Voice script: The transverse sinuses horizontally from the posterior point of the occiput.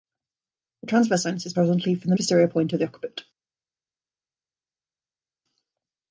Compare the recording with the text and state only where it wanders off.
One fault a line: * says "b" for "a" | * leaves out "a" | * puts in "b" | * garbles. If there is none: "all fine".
all fine